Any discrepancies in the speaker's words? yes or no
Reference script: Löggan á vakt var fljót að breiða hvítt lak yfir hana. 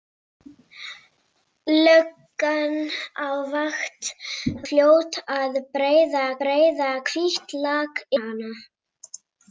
yes